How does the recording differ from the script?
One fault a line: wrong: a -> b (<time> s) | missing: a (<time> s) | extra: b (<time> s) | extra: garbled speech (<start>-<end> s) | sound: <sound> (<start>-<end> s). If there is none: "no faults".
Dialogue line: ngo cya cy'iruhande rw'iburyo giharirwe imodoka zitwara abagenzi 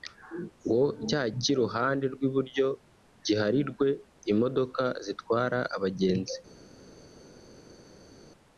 no faults